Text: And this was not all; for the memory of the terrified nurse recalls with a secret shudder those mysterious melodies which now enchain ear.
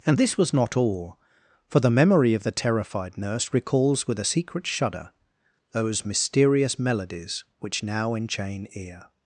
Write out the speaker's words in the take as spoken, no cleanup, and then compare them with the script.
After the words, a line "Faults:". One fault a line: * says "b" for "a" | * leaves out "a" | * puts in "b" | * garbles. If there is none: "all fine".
And this was not all; for the memory of the terrified nurse recalls with a secret shudder those mysterious melodies which now enchain ear.
Faults:
all fine